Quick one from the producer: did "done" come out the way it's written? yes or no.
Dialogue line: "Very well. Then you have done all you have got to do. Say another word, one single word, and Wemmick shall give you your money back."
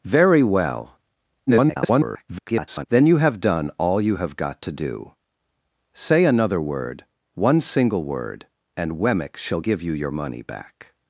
yes